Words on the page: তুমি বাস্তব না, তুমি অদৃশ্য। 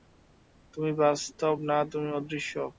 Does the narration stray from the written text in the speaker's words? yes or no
no